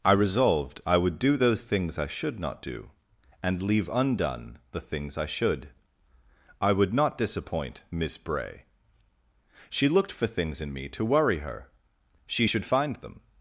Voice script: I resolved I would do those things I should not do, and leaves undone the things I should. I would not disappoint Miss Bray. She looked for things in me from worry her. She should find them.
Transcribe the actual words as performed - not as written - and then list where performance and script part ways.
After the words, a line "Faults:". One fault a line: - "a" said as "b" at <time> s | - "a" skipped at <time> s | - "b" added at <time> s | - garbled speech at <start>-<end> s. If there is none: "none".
I resolved I would do those things I should not do, and leave undone the things I should. I would not disappoint Miss Bray. She looked for things in me to worry her. She should find them.
Faults:
- "leaves" said as "leave" at 3.6 s
- "from" said as "to" at 10.9 s